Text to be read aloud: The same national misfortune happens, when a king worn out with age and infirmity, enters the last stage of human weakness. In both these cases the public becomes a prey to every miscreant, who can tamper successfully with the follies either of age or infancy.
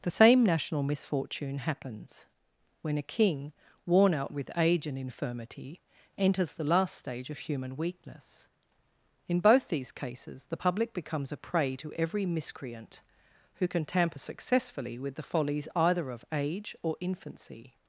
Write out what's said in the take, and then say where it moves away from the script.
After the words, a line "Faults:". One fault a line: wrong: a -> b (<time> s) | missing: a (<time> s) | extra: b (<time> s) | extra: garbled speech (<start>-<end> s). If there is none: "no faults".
The same national misfortune happens, when a king worn out with age and infirmity, enters the last stage of human weakness. In both these cases the public becomes a prey to every miscreant, who can tamper successfully with the follies either of age or infancy.
Faults:
no faults